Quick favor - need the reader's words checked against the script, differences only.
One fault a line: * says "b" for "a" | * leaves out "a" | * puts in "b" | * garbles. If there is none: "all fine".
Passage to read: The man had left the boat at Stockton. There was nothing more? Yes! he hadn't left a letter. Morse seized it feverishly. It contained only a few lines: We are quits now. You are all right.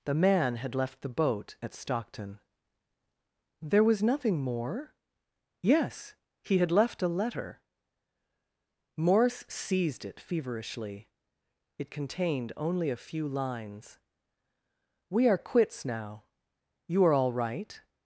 * says "had" for "hadn't"